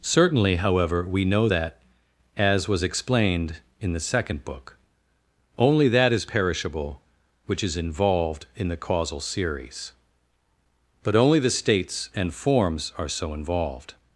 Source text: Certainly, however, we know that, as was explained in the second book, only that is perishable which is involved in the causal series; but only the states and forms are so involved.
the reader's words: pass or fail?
pass